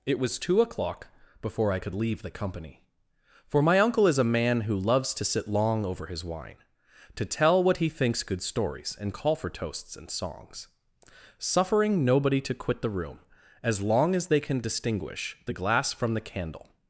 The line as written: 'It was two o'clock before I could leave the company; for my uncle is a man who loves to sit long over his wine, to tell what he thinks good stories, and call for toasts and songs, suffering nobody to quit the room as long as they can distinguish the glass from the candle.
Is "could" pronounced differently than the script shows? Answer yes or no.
no